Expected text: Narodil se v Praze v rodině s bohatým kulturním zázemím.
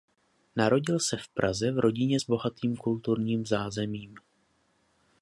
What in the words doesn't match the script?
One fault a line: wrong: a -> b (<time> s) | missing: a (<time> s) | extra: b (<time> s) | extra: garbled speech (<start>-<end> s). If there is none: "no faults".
no faults